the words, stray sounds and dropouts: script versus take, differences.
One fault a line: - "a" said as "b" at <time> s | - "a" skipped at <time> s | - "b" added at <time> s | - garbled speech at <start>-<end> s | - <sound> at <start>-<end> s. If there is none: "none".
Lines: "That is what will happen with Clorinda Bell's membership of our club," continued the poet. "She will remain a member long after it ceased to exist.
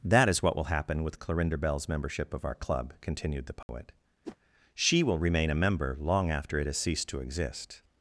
- dropout at 3.6-3.7 s
- whoosh at 4.2-4.4 s
- "has" added at 6.6 s